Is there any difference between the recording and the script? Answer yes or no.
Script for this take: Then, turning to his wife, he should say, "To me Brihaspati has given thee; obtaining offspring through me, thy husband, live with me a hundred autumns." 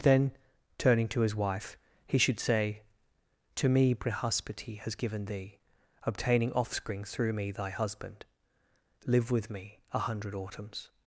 no